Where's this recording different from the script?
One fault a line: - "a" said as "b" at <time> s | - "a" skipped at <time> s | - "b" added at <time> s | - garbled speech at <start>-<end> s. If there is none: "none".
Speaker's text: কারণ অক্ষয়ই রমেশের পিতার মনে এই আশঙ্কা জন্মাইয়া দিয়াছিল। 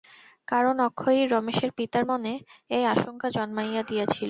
none